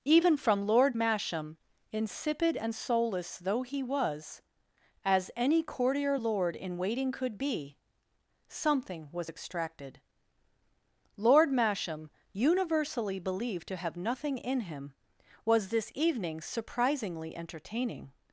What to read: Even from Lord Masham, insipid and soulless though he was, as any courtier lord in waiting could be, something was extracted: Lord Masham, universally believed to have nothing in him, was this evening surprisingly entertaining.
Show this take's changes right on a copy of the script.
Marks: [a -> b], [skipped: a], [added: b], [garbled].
Even from Lord Masham, insipid and soulless though he was, as any courtier lord in waiting could be, something was extracted: Lord Masham, universally believed to have nothing in him, was this evening surprisingly entertaining.